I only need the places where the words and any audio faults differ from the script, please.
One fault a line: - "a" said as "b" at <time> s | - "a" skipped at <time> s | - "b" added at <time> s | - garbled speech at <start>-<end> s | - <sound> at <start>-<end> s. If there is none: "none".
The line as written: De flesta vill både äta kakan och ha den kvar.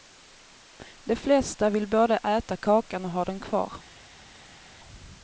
none